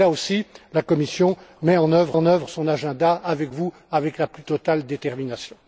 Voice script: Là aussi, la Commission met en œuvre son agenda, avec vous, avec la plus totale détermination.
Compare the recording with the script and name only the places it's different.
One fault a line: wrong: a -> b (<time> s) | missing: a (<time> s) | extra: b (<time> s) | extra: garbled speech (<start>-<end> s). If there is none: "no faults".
extra: en œuvre (2.1 s)